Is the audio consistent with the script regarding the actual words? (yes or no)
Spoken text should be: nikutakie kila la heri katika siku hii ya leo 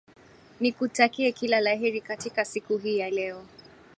yes